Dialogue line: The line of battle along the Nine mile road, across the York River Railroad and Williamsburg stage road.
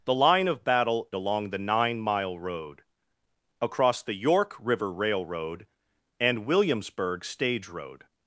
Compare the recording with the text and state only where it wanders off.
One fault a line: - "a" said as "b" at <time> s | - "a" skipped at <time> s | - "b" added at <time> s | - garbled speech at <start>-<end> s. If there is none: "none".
none